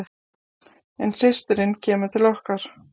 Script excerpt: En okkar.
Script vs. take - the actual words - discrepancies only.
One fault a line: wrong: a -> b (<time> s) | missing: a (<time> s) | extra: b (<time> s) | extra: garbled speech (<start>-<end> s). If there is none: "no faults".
extra: systirin kemur til (1.2 s)